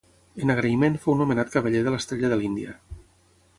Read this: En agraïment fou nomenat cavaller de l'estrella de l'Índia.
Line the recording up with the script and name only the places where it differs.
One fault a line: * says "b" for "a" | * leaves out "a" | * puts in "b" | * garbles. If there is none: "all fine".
all fine